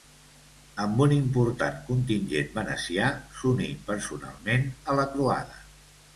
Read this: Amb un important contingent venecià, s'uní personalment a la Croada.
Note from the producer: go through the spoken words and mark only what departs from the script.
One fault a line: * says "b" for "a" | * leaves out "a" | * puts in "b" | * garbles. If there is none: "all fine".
all fine